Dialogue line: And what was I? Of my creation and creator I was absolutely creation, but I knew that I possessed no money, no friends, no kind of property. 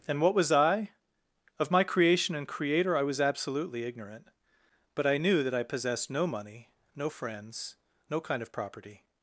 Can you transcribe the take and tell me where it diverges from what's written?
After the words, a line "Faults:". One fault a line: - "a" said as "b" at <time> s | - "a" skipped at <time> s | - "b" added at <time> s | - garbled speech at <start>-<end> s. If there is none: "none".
And what was I? Of my creation and creator I was absolutely ignorant, but I knew that I possessed no money, no friends, no kind of property.
Faults:
- "creation" said as "ignorant" at 3.8 s